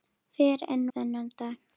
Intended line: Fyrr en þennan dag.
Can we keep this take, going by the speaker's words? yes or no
yes